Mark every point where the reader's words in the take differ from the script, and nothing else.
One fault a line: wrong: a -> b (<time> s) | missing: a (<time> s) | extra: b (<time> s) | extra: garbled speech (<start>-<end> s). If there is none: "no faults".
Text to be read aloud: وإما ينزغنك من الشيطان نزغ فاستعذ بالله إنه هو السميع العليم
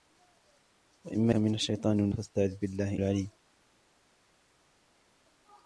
missing: ينزغنك (1.4 s)
missing: نزغ (2.1 s)
missing: إنه هو السميع (3.0 s)